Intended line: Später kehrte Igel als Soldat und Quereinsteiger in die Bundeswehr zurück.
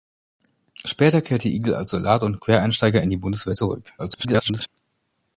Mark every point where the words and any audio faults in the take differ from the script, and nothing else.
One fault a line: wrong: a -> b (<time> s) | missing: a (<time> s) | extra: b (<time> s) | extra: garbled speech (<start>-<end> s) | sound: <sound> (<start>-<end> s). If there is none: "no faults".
extra: garbled speech (4.0-4.7 s)